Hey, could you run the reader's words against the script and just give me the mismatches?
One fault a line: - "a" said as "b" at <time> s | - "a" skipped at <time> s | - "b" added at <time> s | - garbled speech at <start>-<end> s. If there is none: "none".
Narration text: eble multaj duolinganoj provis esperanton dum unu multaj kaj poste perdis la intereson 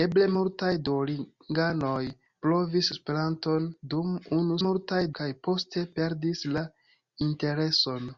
none